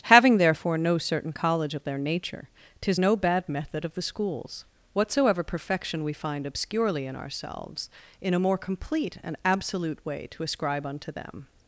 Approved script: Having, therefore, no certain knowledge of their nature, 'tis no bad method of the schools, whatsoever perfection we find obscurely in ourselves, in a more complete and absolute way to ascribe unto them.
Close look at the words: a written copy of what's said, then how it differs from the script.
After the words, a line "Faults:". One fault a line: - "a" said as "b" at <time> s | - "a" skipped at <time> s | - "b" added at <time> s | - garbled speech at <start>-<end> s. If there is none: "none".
Having, therefore, no certain college of their nature, 'tis no bad method of the schools, whatsoever perfection we find obscurely in ourselves, in a more complete and absolute way to ascribe unto them.
Faults:
- "knowledge" said as "college" at 1.3 s